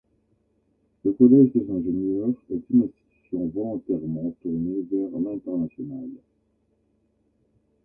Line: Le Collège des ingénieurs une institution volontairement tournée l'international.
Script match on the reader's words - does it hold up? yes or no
no